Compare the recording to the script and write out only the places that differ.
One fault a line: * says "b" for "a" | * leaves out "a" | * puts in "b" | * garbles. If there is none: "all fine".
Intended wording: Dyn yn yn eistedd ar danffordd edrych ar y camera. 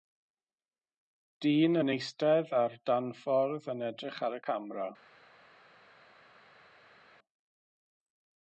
* leaves out "yn"
* puts in "yn"